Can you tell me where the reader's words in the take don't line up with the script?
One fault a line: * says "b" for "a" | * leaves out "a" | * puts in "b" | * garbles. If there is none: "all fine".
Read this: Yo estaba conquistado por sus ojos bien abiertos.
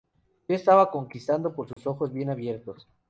all fine